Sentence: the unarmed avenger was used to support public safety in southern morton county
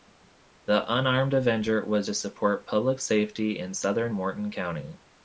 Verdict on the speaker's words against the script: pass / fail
fail